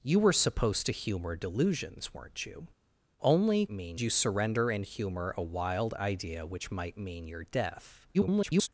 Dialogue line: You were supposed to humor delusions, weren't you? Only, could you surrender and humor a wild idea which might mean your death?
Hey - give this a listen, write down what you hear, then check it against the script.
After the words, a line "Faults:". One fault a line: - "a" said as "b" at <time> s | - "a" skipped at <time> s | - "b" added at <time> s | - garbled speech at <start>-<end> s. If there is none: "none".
You were supposed to humor delusions, weren't you? Only, mean you surrender and humor a wild idea which might mean your death? [garbled]
Faults:
- "could" said as "mean" at 3.7 s
- garbled speech at 8.1-8.7 s